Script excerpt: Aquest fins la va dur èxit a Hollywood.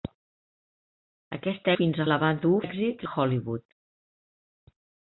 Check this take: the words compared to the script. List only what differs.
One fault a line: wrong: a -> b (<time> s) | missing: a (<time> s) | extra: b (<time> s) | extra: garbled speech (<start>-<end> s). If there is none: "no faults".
no faults